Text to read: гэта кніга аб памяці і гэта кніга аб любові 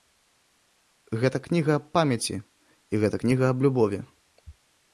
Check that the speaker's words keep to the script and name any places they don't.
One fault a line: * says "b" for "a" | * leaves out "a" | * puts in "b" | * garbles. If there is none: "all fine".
all fine